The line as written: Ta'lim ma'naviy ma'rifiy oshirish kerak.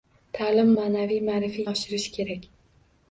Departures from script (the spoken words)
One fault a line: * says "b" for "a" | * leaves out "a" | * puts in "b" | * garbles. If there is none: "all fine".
all fine